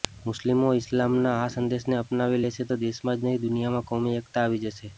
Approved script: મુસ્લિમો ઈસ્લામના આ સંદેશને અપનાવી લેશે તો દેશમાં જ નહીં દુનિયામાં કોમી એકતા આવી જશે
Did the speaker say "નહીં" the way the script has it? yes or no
yes